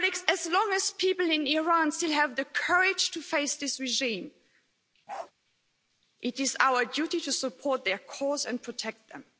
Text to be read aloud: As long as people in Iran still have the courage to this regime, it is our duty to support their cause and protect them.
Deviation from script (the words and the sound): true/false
true